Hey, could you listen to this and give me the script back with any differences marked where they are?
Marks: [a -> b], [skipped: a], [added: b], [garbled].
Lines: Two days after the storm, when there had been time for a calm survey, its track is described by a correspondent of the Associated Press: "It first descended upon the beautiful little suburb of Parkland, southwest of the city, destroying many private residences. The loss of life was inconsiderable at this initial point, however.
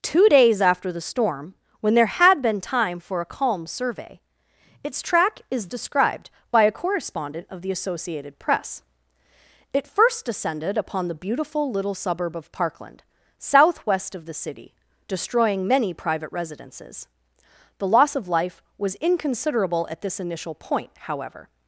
Two days after the storm, when there had been time for a calm survey, its track is described by a correspondent of the Associated Press: "It first descended upon the beautiful little suburb of Parkland, southwest of the city, destroying many private residences. The loss of life was inconsiderable at this initial point, however.